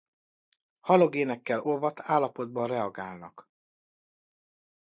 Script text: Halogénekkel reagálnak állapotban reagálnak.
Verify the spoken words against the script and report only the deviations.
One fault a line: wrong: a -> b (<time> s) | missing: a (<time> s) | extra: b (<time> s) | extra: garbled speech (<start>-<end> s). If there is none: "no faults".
wrong: reagálnak -> olvadt (1.6 s)